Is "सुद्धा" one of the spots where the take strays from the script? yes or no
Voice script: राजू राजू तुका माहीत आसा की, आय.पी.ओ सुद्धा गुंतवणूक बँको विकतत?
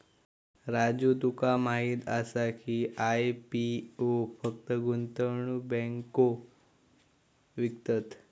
yes